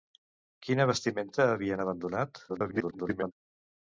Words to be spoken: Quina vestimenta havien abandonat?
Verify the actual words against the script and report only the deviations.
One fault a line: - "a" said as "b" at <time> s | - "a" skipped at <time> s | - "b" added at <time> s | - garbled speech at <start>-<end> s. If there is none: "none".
- garbled speech at 2.5-3.3 s